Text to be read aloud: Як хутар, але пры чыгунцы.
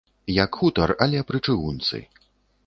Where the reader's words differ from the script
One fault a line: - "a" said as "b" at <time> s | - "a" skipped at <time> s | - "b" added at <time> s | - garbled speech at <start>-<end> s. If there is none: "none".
none